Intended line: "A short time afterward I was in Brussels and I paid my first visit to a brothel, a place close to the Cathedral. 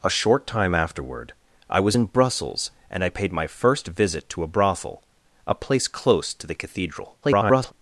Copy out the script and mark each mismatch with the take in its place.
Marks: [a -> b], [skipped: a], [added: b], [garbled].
"A short time afterward I was in Brussels and I paid my first visit to a brothel, a place close to the Cathedral. [garbled]